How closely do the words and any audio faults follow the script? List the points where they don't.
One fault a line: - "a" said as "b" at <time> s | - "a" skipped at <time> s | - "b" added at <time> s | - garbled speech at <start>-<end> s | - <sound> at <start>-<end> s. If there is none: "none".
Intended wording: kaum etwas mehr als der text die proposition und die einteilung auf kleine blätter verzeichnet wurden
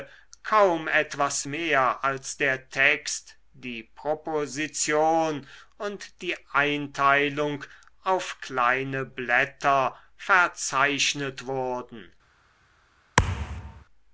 - thud at 13.2-13.8 s